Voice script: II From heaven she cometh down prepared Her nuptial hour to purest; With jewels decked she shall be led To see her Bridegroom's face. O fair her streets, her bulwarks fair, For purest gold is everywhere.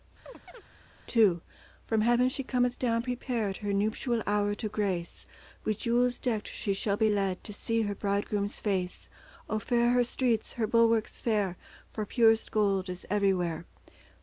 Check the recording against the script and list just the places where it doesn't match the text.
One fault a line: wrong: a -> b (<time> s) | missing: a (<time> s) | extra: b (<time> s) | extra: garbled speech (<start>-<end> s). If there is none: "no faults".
wrong: purest -> grace (4.7 s)